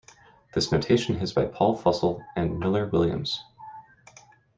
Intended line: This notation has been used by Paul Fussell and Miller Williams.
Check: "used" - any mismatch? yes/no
yes